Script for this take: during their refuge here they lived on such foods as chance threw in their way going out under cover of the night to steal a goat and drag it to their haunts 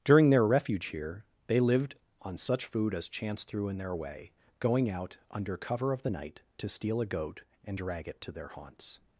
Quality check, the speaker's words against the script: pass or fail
fail